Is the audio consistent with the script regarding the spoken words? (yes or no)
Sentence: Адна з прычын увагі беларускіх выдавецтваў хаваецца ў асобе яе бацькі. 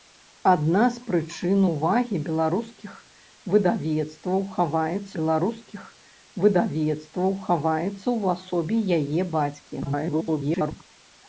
no